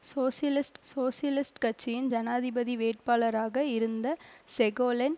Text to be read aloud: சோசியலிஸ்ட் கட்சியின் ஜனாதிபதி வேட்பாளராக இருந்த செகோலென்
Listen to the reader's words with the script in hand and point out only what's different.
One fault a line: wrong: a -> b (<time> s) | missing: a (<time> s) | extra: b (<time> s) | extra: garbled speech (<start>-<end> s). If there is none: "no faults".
extra: சோசியலிஸ்ட் (0.8 s)